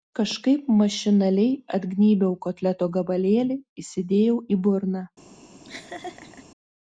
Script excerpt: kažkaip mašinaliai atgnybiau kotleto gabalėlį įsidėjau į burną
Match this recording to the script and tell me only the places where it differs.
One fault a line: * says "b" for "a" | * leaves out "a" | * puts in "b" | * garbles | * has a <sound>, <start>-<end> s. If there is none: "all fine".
* has a laugh, 5.6-6.5 s